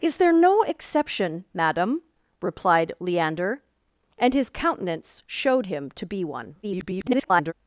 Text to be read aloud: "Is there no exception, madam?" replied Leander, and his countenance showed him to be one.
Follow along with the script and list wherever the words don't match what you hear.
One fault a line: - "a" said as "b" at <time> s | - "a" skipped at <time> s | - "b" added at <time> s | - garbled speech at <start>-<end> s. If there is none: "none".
- garbled speech at 6.6-7.5 s